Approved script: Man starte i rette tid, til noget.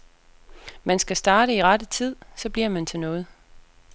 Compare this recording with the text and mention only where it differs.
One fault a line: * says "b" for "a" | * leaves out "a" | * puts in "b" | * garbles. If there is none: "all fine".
* puts in "skal"
* puts in "så bliver man"